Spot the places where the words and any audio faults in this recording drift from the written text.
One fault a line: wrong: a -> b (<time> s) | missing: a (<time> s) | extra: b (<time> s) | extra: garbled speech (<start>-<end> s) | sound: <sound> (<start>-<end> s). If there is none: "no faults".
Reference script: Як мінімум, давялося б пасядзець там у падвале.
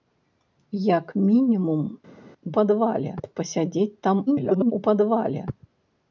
wrong: давялося -> падвале (2.6 s)
extra: garbled speech (4.3-4.7 s)